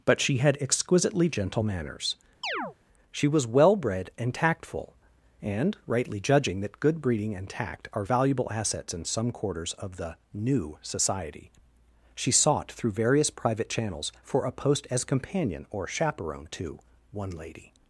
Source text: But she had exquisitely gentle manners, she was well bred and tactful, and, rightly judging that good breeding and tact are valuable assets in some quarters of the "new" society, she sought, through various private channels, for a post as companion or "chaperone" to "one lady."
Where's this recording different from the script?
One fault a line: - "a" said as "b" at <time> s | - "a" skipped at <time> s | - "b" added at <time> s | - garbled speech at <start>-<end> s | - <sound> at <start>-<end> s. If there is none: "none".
- chirp at 2.4-2.8 s